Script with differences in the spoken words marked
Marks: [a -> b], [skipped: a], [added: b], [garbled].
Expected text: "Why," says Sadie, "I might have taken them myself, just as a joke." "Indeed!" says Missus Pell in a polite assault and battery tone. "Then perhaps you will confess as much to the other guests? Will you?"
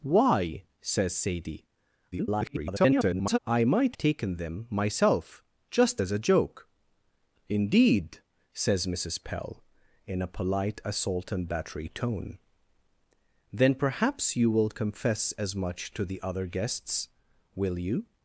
"Why," says Sadie, [garbled] "I might [skipped: have] taken them myself, just as a joke." "Indeed!" says Missus Pell in a polite assault and battery tone. "Then perhaps you will confess as much to the other guests? Will you?"